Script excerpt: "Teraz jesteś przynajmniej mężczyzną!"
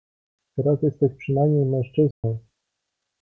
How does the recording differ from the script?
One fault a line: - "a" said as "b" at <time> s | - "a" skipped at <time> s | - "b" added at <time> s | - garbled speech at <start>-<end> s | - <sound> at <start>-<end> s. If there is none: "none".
- dropout at 2.1-2.2 s